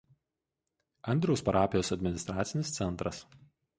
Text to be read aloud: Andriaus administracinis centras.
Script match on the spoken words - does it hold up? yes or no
no